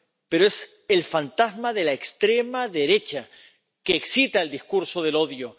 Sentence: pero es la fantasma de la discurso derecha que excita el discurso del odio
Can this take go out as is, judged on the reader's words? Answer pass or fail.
fail